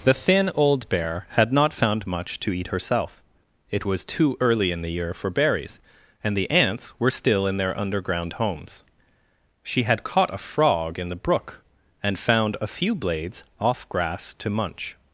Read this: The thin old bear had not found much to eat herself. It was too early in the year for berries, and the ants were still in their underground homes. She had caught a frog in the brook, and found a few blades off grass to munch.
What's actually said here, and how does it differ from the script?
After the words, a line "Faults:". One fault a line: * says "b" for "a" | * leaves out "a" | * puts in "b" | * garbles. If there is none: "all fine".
The thin old bear had not found much to eat herself. It was too early in the year for berries, and the ants were still in their underground homes. She had caught a frog in the brook, and found a few blades off grass to munch.
Faults:
all fine